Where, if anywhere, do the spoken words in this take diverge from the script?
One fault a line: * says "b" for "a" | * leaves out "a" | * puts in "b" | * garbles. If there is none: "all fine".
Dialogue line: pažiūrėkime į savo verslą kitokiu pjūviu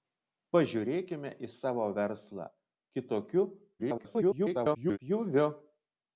* garbles